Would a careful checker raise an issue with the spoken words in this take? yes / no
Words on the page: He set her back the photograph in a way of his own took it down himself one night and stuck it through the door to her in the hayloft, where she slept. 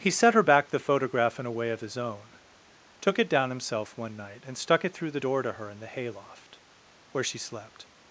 no